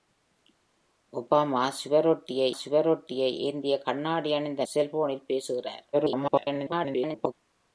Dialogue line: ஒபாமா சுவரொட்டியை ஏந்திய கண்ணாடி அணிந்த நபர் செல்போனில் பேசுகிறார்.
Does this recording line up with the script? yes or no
no